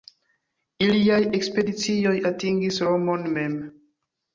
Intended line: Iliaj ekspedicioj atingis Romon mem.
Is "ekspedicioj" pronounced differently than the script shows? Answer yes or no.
no